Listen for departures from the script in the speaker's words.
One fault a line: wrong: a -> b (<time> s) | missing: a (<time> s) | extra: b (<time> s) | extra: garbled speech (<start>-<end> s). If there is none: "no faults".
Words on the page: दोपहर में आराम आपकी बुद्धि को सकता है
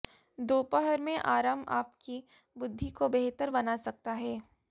extra: बेहतर बना (3.1 s)